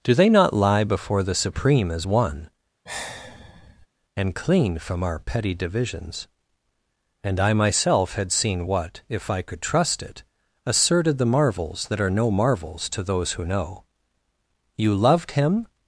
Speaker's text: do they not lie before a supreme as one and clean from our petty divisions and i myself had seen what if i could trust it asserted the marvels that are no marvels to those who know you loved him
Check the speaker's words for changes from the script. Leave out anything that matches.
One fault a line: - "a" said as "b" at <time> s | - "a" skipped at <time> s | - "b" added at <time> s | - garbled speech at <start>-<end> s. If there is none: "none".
- "a" said as "the" at 1.2 s